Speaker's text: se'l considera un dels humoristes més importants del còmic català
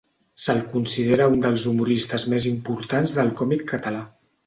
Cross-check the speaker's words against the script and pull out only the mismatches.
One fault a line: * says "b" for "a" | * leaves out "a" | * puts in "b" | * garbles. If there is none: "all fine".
all fine